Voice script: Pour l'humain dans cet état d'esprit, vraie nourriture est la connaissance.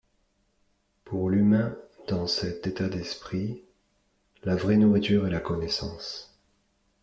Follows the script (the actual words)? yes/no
no